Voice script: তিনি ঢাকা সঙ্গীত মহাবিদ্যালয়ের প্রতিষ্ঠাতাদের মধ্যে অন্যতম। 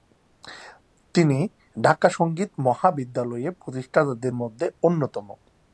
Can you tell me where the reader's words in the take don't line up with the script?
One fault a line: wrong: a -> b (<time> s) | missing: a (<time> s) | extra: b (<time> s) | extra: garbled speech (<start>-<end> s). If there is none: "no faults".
no faults